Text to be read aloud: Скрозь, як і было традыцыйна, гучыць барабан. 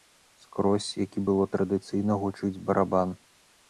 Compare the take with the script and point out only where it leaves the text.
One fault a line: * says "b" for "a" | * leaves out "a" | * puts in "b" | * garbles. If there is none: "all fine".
all fine